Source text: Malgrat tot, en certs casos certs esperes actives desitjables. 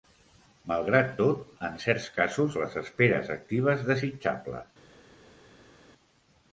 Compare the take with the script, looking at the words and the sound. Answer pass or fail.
fail